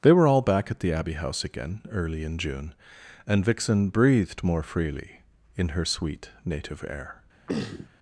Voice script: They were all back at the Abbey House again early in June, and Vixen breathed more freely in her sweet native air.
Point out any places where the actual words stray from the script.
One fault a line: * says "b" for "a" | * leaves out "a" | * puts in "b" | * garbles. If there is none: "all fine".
all fine